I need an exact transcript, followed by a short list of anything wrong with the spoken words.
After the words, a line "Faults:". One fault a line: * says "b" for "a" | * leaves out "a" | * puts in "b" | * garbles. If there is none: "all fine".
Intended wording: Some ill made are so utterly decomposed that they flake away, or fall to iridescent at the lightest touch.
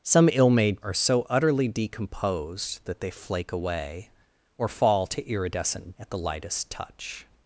Some ill made are so utterly decomposed that they flake away, or fall to iridescent at the lightest touch.
Faults:
all fine